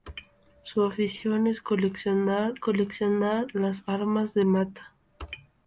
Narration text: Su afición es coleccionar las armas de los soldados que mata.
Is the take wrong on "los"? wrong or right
wrong